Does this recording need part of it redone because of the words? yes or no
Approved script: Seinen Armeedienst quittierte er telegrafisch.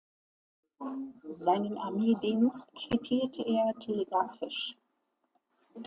no